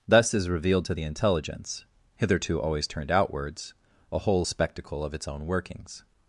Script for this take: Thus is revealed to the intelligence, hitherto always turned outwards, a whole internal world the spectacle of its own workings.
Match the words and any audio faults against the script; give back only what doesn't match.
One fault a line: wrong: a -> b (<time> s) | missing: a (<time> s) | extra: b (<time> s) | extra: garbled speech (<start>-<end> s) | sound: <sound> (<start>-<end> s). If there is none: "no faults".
missing: internal world the (4.4 s)